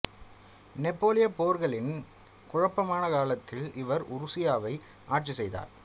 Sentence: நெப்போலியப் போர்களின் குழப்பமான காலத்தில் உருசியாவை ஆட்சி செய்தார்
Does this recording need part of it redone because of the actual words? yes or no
yes